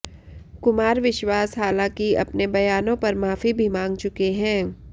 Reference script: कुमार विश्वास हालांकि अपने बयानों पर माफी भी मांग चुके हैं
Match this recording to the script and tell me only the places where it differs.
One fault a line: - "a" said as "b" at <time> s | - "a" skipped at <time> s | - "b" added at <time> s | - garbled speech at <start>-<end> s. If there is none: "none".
none